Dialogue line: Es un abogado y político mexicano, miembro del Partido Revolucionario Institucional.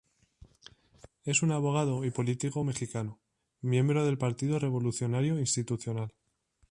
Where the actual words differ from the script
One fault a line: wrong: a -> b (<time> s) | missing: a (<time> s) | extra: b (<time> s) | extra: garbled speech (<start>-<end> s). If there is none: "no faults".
no faults